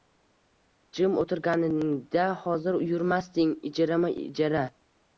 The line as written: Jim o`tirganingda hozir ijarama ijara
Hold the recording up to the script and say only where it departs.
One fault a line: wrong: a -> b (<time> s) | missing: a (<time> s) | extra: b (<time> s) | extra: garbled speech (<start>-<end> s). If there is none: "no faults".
extra: yurmasding (2.9 s)